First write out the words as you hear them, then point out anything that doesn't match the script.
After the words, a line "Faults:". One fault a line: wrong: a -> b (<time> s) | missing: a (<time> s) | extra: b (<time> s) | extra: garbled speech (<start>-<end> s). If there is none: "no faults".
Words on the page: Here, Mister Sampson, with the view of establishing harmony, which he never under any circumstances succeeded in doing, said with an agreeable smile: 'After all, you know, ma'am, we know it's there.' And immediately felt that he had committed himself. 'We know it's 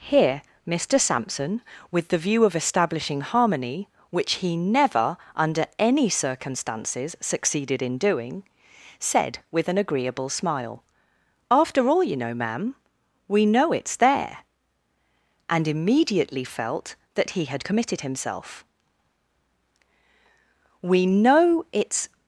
Here, Mister Sampson, with the view of establishing harmony, which he never under any circumstances succeeded in doing, said with an agreeable smile: 'After all, you know, ma'am, we know it's there.' And immediately felt that he had committed himself. 'We know it's
Faults:
no faults